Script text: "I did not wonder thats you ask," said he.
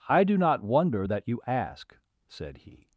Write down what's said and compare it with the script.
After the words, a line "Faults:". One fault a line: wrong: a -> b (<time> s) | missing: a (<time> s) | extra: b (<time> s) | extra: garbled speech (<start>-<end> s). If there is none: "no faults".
"I do not wonder that you ask," said he.
Faults:
wrong: did -> do (0.2 s)
wrong: thats -> that (1.0 s)